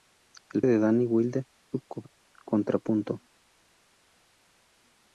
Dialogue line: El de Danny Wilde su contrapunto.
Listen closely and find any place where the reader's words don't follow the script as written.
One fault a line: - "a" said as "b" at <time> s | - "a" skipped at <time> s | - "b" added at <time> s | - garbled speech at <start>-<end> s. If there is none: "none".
none